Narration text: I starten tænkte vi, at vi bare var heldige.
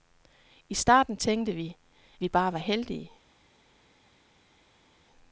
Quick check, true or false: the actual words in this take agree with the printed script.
false